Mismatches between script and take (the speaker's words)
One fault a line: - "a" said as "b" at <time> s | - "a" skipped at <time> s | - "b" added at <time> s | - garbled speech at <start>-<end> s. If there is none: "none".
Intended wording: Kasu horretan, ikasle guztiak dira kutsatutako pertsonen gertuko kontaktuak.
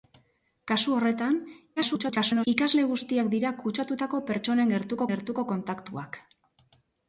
- garbled speech at 1.8-2.5 s
- "gertuko" added at 5.1 s